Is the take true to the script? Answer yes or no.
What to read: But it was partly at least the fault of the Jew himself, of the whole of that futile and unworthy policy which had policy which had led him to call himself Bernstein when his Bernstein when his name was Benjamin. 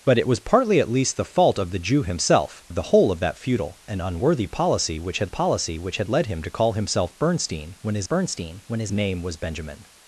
yes